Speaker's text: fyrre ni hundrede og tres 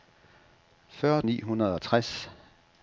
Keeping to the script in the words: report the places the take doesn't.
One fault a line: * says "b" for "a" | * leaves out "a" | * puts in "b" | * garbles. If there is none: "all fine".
all fine